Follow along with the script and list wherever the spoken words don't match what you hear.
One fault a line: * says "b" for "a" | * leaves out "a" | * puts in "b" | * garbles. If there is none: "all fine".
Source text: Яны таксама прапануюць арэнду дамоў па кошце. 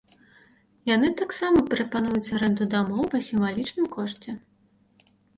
* puts in "сімвалічным"